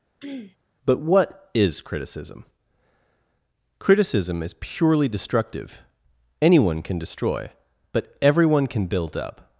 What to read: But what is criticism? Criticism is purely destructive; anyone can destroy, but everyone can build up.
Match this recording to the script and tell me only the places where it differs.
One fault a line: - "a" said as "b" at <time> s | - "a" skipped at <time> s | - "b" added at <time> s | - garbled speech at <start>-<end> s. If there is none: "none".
none